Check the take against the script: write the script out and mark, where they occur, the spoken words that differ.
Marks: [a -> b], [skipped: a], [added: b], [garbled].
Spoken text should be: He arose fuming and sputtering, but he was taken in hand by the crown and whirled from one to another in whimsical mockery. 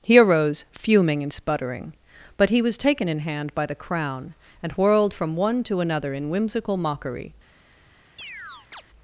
He arose fuming and sputtering, but he was taken in hand by the crown and whirled from one to another in whimsical mockery.